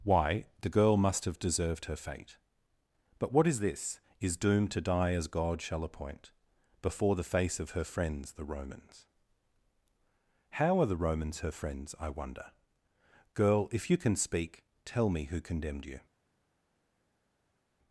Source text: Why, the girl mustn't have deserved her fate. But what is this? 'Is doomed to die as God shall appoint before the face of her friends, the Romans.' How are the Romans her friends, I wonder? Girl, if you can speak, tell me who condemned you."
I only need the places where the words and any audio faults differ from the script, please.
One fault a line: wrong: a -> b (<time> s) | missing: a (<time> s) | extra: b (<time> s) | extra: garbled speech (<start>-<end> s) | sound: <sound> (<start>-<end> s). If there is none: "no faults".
wrong: mustn't -> must (1.0 s)